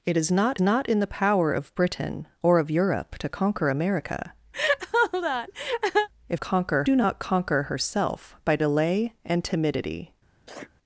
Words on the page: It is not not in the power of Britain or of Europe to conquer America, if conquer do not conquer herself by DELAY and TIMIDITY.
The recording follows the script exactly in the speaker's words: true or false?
true